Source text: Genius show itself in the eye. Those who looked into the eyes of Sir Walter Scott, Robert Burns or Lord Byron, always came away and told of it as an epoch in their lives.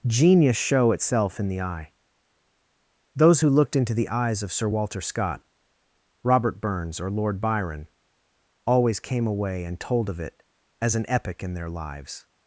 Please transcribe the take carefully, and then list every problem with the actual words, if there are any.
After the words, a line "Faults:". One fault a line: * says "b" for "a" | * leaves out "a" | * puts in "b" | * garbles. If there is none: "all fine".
Genius show itself in the eye. Those who looked into the eyes of Sir Walter Scott, Robert Burns or Lord Byron, always came away and told of it as an epoch in their lives.
Faults:
all fine